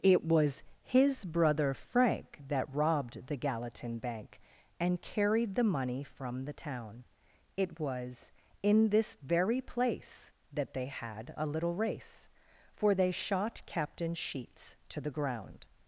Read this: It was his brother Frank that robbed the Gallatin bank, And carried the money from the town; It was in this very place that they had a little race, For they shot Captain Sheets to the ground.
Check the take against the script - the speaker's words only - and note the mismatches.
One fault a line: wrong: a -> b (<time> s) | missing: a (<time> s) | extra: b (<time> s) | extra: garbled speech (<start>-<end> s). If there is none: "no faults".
no faults